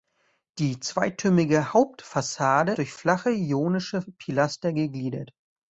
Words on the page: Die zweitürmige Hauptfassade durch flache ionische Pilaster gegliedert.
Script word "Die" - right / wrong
right